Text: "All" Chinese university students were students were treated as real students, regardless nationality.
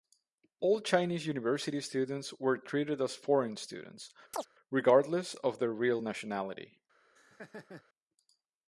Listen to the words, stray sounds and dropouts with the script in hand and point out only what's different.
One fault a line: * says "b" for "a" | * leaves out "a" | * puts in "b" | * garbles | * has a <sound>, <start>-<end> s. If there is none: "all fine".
* leaves out "students were"
* says "foreign" for "real"
* has a chirp, 4.3-4.5 s
* puts in "of their real"
* has a laugh, 7.2-7.8 s